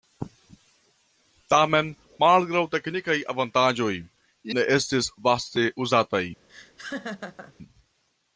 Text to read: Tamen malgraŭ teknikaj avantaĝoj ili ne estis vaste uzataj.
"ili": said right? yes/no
no